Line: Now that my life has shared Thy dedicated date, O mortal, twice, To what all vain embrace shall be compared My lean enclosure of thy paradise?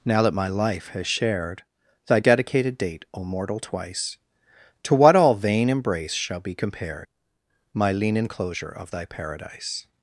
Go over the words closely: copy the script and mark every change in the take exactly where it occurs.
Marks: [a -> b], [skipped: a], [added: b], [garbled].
Now that my life has shared Thy dedicated date, O mortal, twice, To what all vain embrace shall be compared My lean enclosure of thy paradise?